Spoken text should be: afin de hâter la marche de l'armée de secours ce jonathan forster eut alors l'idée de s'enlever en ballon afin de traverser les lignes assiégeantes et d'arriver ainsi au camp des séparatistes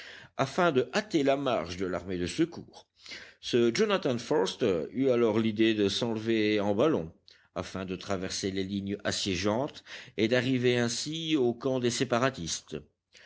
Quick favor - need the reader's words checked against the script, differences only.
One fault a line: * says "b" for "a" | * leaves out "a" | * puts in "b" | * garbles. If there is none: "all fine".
all fine